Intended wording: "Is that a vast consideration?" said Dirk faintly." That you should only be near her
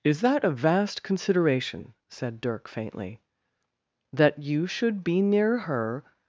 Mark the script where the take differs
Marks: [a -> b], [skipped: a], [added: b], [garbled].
"Is that a vast consideration?" said Dirk faintly." That you should [skipped: only] be near her